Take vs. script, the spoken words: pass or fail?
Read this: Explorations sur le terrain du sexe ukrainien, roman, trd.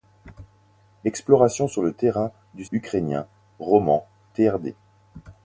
fail